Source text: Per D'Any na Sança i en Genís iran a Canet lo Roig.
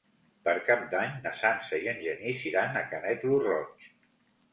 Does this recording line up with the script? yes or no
no